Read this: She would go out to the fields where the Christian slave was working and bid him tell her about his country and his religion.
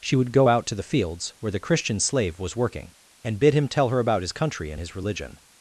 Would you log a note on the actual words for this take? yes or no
no